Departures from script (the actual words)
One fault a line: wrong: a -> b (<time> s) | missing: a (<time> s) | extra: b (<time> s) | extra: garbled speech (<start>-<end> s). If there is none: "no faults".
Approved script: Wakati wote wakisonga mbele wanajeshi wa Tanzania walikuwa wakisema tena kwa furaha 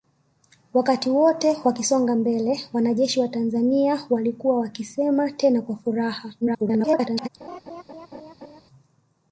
extra: garbled speech (6.4-7.3 s)